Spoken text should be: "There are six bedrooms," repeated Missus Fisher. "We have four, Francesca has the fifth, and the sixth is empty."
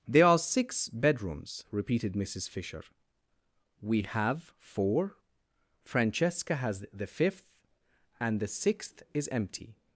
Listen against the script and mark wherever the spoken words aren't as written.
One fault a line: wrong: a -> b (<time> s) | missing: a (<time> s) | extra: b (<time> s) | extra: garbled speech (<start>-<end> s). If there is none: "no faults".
no faults